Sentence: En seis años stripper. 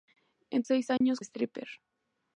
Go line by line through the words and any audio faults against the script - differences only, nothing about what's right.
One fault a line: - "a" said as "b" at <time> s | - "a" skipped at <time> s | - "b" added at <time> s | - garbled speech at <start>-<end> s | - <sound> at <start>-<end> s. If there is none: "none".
- dropout at 1.0-1.0 s